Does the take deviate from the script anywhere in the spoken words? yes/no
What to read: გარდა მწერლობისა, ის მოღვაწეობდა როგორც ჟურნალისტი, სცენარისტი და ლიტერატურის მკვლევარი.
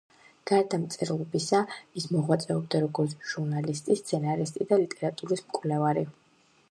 no